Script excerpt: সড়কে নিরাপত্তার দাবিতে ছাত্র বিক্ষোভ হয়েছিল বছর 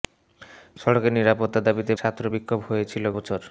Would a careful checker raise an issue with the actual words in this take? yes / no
no